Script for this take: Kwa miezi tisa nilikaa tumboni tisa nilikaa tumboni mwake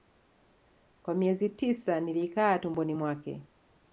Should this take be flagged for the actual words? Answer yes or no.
yes